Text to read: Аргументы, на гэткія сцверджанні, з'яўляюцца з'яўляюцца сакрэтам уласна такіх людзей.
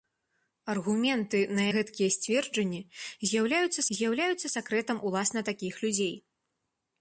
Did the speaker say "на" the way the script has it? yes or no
yes